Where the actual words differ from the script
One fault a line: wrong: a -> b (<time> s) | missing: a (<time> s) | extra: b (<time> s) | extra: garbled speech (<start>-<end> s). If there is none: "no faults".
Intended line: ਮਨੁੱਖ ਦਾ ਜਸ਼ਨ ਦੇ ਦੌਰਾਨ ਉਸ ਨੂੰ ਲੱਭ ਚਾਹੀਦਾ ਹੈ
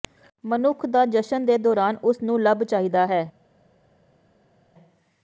no faults